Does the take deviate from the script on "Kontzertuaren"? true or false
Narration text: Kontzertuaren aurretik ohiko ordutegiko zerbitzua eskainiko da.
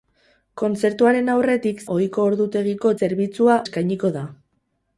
false